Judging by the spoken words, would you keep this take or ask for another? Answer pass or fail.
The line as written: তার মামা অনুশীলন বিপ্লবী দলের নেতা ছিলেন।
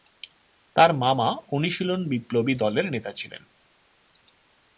pass